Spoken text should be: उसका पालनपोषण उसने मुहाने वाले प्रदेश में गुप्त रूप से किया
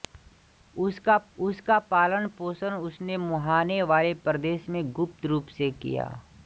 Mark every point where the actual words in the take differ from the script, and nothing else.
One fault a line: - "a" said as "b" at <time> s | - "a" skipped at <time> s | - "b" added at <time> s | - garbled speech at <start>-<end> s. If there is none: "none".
- "उसका" added at 1.4 s